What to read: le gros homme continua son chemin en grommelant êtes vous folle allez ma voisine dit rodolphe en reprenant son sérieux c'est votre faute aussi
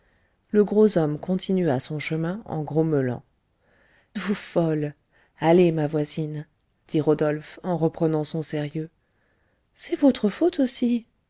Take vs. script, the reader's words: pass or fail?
fail